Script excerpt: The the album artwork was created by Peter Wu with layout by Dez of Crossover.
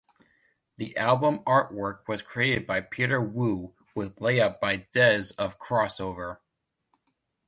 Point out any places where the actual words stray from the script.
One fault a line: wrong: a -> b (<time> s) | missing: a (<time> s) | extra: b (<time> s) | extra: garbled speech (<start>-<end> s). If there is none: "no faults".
missing: the (1.0 s)